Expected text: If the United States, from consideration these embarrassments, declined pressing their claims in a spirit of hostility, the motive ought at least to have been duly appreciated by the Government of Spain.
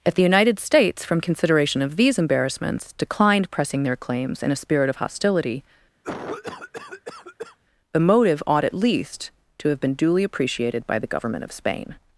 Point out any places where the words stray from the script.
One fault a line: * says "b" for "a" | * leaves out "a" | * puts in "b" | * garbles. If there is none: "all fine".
* puts in "of"